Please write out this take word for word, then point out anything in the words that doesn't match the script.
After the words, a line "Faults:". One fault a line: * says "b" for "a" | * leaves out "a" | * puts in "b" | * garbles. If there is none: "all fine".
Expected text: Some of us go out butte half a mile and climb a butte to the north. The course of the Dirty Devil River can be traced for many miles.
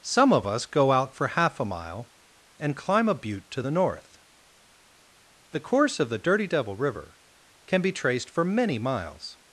Some of us go out for half a mile and climb a butte to the north. The course of the Dirty Devil River can be traced for many miles.
Faults:
* says "for" for "butte"